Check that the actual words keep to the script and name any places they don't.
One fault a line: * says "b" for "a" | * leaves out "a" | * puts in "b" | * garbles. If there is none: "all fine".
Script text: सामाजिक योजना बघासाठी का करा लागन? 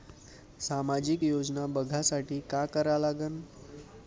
all fine